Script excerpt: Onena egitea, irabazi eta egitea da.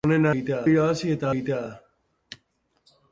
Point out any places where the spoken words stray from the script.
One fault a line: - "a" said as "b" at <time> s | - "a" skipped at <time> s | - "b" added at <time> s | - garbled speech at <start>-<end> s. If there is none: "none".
none